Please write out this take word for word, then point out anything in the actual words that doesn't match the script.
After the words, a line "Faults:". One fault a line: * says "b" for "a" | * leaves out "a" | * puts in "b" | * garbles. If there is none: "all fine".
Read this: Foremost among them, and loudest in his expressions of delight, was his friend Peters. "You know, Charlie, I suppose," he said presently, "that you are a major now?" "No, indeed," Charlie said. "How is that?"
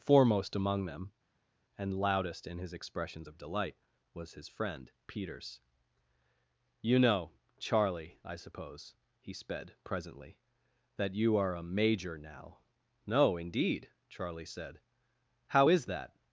Foremost among them, and loudest in his expressions of delight, was his friend Peters. "You know, Charlie, I suppose," he sped presently, "that you are a major now?" "No, indeed," Charlie said. "How is that?"
Faults:
* says "sped" for "said"